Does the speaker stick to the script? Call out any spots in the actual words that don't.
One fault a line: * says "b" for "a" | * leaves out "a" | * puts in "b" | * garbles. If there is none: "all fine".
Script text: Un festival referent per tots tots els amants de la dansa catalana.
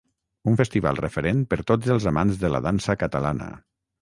* leaves out "tots"